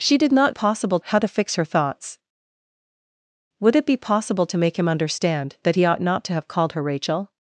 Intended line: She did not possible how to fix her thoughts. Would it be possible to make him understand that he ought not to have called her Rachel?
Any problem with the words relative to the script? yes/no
no